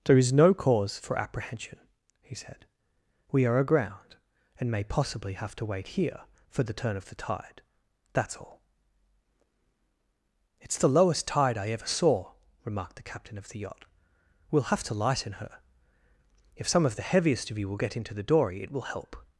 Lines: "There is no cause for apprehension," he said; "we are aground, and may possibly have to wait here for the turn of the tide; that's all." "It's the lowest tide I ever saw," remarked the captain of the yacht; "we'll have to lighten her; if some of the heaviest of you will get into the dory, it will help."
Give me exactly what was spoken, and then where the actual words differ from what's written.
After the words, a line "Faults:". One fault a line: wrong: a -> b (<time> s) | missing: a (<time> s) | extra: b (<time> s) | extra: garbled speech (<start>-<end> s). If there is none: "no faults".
"There is no cause for apprehension," he said; "we are aground, and may possibly have to wait here for the turn of the tide; that's all." "It's the lowest tide I ever saw," remarked the captain of the yacht; "we'll have to lighten her; if some of the heaviest of you will get into the dory, it will help."
Faults:
no faults